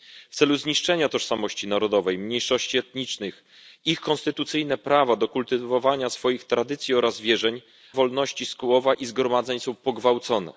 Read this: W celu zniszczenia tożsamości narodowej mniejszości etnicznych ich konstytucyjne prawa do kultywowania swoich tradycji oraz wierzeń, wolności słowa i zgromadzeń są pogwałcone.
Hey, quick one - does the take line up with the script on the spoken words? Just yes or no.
yes